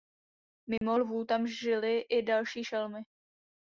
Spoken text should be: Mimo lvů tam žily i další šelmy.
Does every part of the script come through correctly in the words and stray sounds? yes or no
no